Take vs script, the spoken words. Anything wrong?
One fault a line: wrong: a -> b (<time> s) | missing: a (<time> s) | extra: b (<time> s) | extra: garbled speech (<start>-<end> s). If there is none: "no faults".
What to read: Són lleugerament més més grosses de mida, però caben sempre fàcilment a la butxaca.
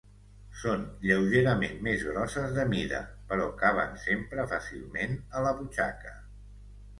missing: més (2.0 s)